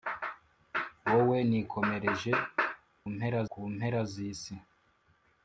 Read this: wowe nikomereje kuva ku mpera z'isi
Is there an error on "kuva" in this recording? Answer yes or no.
yes